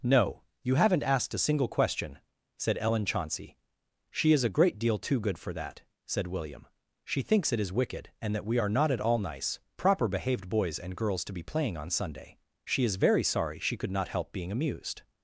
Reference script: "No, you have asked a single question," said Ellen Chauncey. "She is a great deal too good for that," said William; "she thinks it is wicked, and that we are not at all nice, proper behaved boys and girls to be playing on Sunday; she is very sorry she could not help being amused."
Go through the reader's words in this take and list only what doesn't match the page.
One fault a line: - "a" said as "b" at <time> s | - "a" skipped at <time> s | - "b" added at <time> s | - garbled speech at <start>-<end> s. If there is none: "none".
- "have" said as "haven't" at 0.8 s